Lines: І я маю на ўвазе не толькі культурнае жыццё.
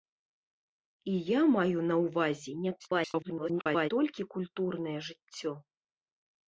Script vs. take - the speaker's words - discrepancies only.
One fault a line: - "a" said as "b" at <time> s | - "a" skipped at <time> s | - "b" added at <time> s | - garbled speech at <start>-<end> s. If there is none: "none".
- garbled speech at 2.8-3.9 s